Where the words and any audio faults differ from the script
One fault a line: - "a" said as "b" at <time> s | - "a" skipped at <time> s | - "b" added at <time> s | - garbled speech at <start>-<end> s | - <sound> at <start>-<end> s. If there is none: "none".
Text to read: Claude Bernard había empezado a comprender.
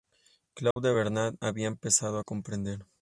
- dropout at 0.7-0.8 s